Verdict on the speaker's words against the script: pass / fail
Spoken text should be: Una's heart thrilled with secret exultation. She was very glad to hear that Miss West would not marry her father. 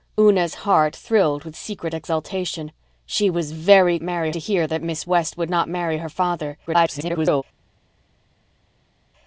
fail